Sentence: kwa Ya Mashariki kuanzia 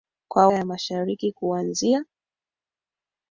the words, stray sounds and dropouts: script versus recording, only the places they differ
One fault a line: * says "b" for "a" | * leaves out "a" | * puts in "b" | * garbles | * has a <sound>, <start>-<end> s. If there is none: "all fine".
all fine